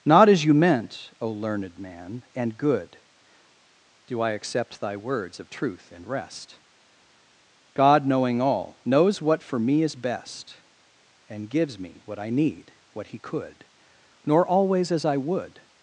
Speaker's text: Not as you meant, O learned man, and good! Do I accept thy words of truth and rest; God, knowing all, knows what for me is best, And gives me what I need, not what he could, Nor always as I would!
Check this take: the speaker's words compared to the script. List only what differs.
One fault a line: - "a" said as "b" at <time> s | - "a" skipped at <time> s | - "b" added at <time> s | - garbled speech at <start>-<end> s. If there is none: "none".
- "not" skipped at 12.7 s